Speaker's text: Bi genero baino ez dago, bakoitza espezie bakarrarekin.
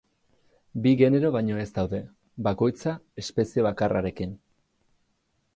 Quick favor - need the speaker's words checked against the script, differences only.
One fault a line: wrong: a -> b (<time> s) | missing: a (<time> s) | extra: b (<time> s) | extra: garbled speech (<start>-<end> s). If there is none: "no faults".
wrong: dago -> daude (1.8 s)